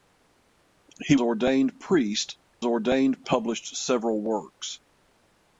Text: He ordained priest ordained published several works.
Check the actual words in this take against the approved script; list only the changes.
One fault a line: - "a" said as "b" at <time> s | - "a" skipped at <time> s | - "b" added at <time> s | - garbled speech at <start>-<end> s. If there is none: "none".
none